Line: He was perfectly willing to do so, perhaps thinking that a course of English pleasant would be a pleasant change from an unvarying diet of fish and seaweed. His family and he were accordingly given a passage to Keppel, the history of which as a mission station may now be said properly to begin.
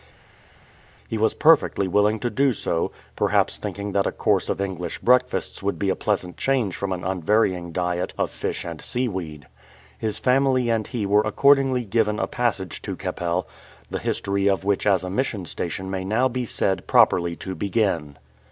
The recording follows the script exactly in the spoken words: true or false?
false